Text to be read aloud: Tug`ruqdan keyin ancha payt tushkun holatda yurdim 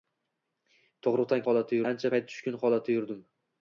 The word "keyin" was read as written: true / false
false